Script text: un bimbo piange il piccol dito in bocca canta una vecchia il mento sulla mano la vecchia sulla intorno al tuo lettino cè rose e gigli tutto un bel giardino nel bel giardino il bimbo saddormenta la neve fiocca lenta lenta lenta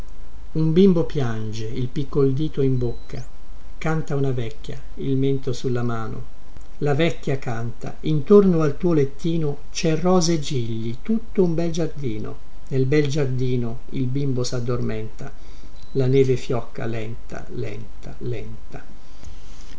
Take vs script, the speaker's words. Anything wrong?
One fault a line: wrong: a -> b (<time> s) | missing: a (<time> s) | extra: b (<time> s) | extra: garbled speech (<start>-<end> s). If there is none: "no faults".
wrong: sulla -> canta (7.4 s)